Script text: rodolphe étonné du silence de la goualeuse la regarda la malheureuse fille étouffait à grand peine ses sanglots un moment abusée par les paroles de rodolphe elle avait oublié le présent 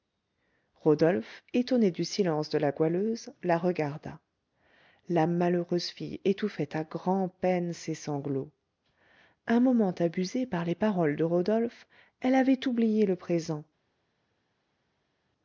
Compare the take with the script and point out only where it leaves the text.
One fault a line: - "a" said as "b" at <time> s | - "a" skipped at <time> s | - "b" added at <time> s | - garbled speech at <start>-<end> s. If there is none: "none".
none